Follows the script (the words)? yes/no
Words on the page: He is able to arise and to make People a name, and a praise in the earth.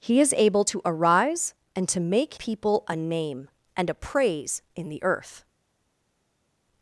yes